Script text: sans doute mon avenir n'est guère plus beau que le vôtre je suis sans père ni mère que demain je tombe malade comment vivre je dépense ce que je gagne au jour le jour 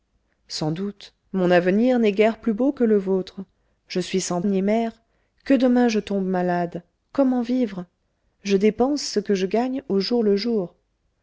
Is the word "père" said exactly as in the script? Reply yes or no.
no